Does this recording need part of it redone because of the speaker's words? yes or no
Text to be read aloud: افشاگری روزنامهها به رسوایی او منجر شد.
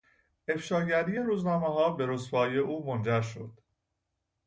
no